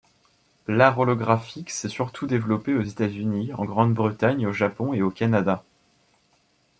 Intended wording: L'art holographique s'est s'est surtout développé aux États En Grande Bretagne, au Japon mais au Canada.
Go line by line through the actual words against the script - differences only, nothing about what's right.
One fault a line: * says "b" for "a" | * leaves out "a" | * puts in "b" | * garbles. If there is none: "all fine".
* leaves out "s'est"
* puts in "Unis"
* says "et" for "mais"